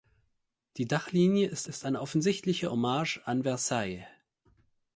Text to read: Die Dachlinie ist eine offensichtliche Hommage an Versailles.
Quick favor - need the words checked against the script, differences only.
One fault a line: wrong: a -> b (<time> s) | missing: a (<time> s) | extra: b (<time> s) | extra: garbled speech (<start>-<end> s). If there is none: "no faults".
extra: ist (1.6 s)